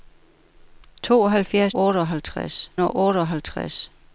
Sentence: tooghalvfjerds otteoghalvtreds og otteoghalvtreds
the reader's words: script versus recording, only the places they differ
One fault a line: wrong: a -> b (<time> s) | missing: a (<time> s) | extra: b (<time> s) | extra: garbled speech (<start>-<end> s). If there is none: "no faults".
no faults